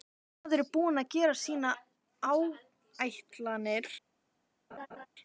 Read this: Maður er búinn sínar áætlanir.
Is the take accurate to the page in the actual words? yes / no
no